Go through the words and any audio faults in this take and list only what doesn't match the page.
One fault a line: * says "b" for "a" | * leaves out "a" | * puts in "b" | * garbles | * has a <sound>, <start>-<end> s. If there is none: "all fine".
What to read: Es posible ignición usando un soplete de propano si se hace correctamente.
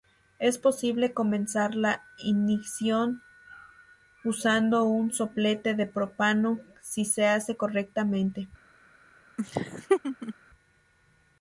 * puts in "comenzar la"
* has a laugh, 9.4-10.3 s